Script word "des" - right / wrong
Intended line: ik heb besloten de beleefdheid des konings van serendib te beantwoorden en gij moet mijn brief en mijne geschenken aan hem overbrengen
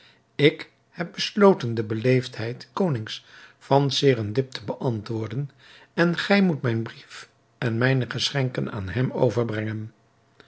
wrong